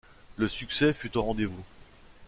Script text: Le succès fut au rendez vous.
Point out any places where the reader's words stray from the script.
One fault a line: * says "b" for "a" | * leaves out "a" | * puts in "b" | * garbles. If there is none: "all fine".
all fine